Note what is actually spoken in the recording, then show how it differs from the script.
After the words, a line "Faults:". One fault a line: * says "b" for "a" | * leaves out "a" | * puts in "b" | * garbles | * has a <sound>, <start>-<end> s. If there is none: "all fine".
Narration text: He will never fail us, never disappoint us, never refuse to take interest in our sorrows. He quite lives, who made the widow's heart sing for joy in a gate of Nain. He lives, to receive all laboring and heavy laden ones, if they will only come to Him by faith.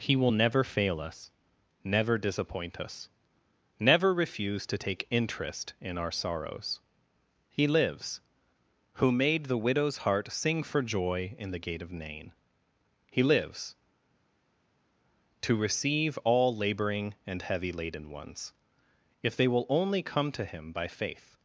He will never fail us, never disappoint us, never refuse to take interest in our sorrows. He lives, who made the widow's heart sing for joy in the gate of Nain. He lives, to receive all laboring and heavy laden ones, if they will only come to Him by faith.
Faults:
* leaves out "quite"
* says "the" for "a"